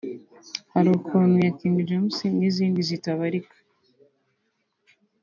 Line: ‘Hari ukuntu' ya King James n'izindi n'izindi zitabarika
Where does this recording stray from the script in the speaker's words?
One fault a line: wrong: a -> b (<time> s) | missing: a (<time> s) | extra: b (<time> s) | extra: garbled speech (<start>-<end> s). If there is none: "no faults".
missing: n'izindi (2.8 s)